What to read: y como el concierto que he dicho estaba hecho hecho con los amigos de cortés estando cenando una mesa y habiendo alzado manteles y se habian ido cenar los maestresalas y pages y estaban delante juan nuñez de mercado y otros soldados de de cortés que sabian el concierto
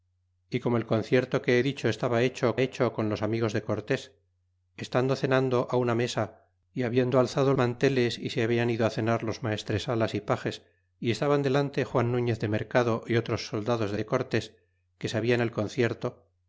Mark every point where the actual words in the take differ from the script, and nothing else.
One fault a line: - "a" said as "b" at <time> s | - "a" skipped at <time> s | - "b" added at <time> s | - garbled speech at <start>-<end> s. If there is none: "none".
none